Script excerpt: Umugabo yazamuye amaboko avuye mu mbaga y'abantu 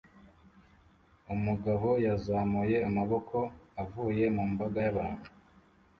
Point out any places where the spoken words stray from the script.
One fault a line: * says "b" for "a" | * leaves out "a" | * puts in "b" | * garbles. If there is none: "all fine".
all fine